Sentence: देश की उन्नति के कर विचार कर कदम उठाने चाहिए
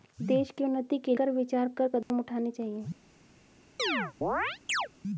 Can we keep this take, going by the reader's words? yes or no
yes